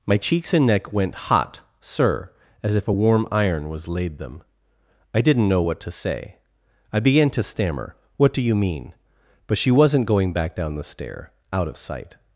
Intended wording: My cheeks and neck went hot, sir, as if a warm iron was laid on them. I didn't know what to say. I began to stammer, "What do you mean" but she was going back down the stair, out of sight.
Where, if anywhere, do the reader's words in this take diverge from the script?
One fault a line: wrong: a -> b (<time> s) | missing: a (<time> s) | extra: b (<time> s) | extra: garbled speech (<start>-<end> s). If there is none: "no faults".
missing: on (4.2 s)
wrong: was -> wasn't (9.7 s)